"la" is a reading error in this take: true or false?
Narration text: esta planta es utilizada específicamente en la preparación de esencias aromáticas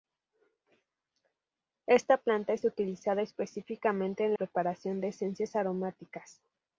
true